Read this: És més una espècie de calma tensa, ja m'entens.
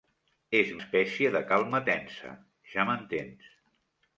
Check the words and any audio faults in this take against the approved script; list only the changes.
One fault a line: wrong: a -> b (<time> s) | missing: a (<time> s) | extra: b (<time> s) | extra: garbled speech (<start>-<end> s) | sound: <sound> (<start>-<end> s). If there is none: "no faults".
missing: més una (0.7 s)